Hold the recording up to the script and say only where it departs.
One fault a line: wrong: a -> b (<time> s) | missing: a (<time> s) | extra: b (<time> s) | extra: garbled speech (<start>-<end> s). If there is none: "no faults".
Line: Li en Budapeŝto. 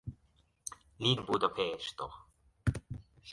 no faults